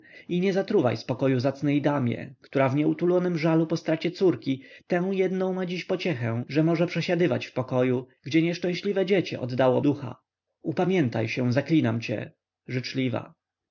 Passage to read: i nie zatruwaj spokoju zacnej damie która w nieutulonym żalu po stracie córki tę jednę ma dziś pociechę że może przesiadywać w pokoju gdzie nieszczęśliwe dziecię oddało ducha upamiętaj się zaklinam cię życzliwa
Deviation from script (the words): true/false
false